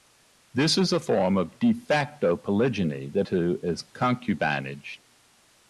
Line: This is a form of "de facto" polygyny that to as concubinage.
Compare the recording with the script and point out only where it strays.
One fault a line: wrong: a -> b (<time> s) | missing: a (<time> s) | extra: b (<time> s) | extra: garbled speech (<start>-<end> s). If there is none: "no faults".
no faults